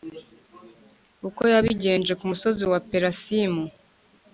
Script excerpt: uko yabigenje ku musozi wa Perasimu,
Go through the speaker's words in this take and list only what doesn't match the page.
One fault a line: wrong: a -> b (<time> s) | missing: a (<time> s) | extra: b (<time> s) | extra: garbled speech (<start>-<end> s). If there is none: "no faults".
no faults